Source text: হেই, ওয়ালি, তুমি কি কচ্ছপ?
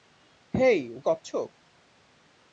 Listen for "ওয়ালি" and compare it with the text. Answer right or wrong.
wrong